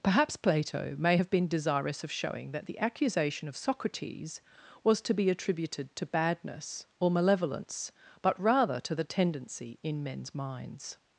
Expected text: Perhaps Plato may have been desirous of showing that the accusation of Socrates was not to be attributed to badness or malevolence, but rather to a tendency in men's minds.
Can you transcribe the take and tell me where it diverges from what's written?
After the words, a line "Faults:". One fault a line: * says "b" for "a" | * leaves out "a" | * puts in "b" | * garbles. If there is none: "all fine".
Perhaps Plato may have been desirous of showing that the accusation of Socrates was to be attributed to badness or malevolence, but rather to the tendency in men's minds.
Faults:
* leaves out "not"
* says "the" for "a"